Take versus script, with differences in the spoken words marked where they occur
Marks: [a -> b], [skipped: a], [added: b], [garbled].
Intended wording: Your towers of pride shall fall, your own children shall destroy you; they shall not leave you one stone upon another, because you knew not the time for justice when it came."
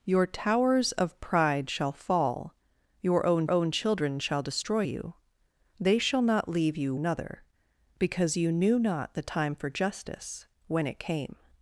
Your towers of pride shall fall, your own [added: own] children shall destroy you; they shall not leave you [skipped: one stone upon] another, because you knew not the time for justice when it came."